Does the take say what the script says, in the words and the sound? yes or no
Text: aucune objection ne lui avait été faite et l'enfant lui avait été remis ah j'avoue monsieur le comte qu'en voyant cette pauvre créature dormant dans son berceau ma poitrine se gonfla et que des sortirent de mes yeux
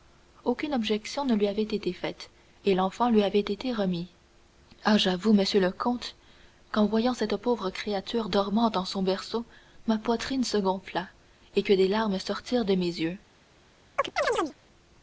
no